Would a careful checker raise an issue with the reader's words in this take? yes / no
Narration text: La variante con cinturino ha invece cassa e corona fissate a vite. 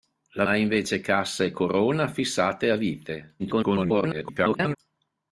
yes